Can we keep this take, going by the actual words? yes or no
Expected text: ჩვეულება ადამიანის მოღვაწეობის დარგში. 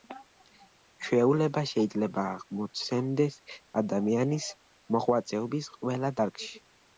no